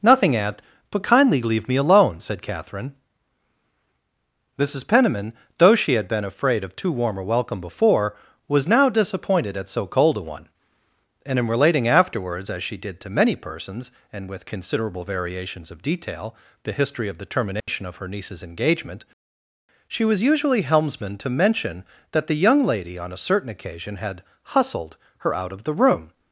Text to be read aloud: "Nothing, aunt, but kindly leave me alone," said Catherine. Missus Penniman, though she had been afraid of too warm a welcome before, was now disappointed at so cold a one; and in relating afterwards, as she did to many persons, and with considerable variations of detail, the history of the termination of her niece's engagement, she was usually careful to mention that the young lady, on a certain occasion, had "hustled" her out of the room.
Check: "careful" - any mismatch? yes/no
yes